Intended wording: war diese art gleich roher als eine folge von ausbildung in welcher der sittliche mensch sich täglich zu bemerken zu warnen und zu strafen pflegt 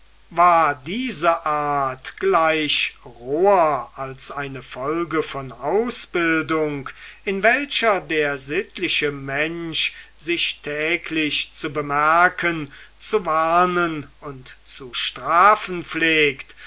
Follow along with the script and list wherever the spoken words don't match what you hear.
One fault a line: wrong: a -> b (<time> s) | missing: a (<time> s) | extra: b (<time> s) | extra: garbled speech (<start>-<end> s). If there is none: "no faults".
no faults